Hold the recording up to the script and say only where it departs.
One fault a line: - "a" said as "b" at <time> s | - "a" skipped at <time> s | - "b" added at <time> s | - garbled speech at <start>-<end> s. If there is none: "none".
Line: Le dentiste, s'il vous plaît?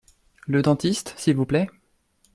none